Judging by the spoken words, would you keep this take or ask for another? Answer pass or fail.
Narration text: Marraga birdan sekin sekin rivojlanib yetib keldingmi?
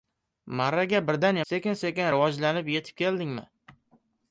pass